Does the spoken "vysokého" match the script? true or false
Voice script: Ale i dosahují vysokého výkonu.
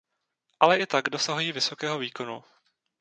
true